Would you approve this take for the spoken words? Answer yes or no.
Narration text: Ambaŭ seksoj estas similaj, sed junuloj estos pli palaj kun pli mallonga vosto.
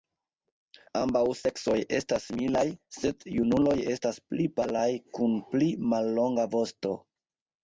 no